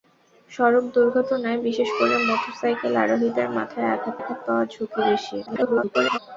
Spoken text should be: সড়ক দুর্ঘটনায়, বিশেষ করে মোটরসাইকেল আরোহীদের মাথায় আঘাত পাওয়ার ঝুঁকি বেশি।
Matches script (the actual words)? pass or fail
fail